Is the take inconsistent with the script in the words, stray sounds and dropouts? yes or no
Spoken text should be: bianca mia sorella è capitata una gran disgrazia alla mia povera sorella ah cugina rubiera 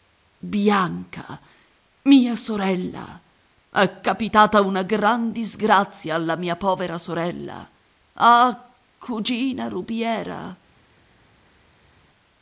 no